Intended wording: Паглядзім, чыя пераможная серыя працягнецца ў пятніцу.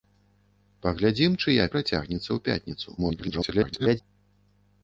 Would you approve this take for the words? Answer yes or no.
no